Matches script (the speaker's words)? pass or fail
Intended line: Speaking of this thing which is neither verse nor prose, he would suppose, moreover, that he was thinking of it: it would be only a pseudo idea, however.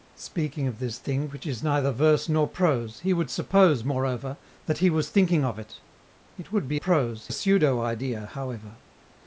fail